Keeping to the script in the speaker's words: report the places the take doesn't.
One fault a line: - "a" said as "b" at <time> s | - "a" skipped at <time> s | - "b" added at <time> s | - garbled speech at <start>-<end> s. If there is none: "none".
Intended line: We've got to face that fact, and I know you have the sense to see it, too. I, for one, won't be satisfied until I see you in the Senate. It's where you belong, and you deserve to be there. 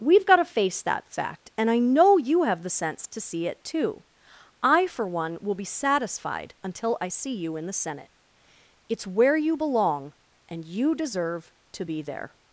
- "won't" said as "will" at 5.4 s